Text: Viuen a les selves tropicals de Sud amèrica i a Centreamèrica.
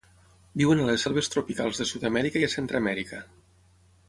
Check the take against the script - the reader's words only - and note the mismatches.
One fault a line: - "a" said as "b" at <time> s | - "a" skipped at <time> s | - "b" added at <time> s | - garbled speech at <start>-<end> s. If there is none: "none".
none